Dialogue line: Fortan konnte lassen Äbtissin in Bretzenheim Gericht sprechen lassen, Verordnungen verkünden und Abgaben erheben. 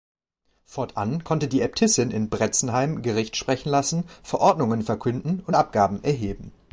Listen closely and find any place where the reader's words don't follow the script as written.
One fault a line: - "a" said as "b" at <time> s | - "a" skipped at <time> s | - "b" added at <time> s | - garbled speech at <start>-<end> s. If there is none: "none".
- "lassen" said as "die" at 1.5 s